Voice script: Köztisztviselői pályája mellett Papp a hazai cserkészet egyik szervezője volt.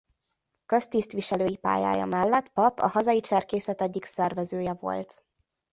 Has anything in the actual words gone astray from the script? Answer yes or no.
no